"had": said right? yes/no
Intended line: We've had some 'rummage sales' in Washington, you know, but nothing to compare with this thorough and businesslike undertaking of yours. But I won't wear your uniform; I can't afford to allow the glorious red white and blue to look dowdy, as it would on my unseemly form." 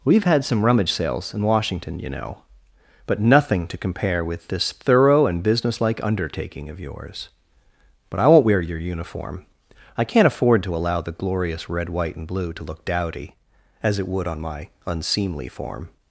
yes